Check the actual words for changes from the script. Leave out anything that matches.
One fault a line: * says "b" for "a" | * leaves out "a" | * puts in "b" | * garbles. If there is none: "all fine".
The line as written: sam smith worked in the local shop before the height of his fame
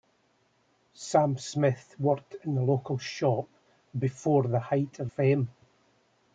* leaves out "his"